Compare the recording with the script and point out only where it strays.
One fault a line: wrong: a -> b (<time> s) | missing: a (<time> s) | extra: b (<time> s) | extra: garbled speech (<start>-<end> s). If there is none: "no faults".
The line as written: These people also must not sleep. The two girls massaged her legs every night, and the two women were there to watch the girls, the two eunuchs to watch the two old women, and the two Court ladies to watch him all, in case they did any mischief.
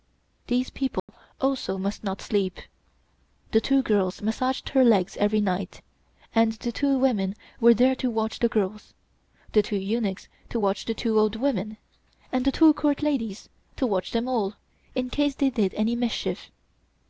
wrong: him -> them (14.1 s)